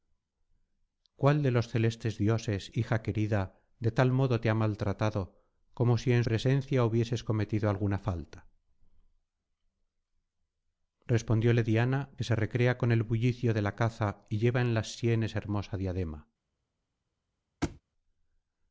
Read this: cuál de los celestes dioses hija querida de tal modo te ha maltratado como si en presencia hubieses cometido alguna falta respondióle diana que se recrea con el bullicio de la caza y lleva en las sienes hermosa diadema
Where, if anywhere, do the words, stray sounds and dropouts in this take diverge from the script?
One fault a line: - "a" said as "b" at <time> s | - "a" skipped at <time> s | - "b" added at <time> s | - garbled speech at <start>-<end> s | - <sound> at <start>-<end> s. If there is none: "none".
- thud at 17.6-17.8 s